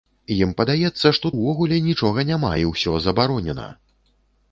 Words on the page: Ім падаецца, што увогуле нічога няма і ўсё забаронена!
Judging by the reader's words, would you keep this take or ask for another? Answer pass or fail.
pass